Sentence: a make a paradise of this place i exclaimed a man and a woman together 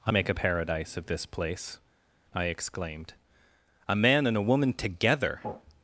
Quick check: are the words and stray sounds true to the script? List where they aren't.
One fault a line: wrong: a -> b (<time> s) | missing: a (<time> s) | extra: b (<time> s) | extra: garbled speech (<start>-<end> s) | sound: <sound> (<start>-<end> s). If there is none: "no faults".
no faults